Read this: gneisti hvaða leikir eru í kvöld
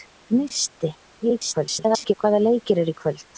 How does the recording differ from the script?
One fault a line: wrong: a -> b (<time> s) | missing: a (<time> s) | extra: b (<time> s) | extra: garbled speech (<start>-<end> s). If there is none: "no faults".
extra: garbled speech (1.2-2.1 s)